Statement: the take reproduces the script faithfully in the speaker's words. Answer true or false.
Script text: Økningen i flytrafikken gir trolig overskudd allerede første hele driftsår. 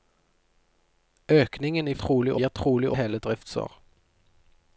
false